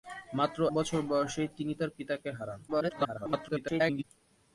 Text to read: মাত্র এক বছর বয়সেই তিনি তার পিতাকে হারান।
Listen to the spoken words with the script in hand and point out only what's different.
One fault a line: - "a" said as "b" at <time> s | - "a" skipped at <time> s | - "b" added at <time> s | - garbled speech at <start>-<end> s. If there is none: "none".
- "এক" skipped at 0.6 s
- garbled speech at 2.7-4.0 s